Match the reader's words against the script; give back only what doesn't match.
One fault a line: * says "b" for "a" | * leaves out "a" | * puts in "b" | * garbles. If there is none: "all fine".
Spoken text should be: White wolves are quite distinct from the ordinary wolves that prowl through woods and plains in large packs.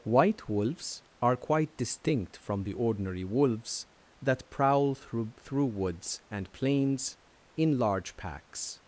* puts in "through"